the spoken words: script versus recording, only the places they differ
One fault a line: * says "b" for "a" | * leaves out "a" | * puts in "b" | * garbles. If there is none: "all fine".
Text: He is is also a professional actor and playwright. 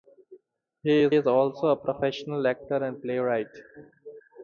all fine